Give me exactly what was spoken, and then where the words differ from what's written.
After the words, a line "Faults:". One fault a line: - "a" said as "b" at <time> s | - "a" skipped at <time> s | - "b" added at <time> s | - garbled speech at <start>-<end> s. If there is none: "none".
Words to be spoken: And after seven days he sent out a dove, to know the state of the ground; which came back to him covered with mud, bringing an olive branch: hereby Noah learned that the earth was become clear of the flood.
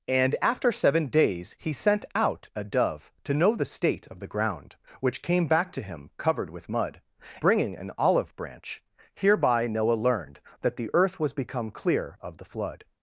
And after seven days he sent out a dove, to know the state of the ground; which came back to him covered with mud, bringing an olive branch: hereby Noah learned that the earth was become clear of the flood.
Faults:
none